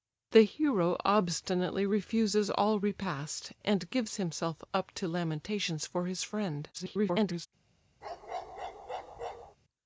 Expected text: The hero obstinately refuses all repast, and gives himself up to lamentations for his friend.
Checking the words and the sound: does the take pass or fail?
fail